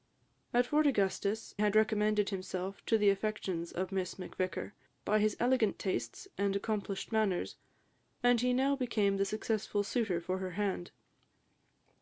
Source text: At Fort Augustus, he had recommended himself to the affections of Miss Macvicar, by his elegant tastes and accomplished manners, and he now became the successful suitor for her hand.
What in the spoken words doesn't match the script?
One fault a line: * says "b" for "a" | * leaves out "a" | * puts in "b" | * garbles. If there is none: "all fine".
* leaves out "he"